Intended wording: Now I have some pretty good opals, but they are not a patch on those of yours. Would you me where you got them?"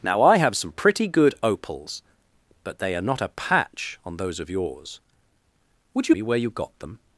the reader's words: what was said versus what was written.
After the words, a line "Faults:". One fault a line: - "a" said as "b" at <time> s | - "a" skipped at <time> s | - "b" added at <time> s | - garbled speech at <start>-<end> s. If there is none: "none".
Now I have some pretty good opals, but they are not a patch on those of yours. Would you me where you got them?"
Faults:
none